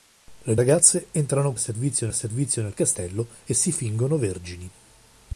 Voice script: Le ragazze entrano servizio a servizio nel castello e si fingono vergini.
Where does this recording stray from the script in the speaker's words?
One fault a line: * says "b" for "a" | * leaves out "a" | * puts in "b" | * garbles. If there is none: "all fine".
all fine